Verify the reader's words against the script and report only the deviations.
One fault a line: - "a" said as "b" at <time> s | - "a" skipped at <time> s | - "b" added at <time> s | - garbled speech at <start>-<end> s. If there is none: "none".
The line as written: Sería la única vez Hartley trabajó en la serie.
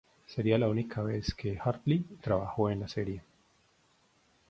- "que" added at 1.4 s